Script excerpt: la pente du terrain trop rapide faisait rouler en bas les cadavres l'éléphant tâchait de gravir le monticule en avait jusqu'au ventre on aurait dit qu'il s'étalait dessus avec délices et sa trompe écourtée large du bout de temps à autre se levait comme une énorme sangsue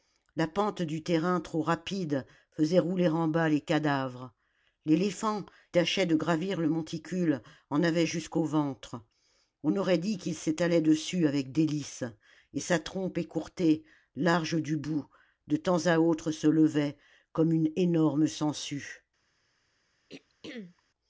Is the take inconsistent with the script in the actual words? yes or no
no